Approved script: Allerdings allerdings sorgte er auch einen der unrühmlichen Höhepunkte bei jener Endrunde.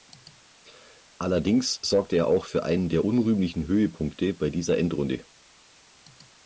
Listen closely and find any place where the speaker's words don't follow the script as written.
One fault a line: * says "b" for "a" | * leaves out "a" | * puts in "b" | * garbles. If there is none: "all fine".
* leaves out "allerdings"
* puts in "für"
* says "dieser" for "jener"